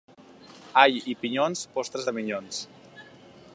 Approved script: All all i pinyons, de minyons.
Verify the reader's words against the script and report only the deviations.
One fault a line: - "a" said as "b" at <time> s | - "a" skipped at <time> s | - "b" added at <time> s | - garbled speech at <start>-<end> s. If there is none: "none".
- "all" skipped at 1.0 s
- "postres" added at 1.8 s